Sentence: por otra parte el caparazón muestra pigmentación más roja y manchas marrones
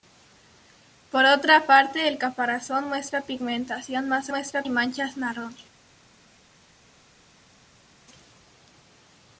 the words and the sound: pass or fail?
fail